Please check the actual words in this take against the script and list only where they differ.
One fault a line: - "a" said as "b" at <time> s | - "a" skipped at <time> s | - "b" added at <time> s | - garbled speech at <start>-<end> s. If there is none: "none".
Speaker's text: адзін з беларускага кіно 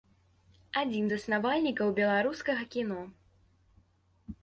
- "заснавальнікаў" added at 1.1 s